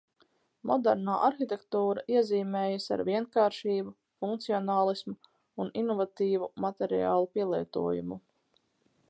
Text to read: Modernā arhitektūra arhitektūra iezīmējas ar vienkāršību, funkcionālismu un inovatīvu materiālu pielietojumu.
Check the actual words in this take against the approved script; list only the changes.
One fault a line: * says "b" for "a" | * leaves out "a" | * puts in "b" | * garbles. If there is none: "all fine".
* leaves out "arhitektūra"